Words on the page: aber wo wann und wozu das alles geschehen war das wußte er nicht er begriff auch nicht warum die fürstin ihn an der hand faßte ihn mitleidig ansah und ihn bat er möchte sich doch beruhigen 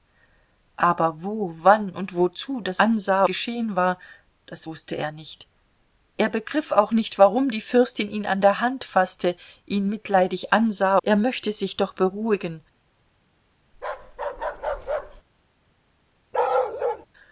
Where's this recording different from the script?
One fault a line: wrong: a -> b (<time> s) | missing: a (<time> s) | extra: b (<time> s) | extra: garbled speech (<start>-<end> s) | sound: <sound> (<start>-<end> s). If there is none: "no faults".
wrong: alles -> ansah (2.8 s)
missing: und ihn bat (11.0 s)
sound: bark (13.7-15.2 s)
sound: bark (16.3-17.1 s)